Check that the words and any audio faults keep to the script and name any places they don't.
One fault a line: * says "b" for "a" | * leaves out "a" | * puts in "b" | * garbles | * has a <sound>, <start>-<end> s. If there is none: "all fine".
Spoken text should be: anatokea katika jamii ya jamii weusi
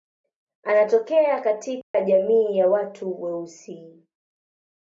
* has a dropout, 1.8-1.9 s
* says "watu" for "jamii"